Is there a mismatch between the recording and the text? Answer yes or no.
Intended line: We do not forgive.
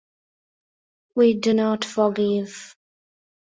no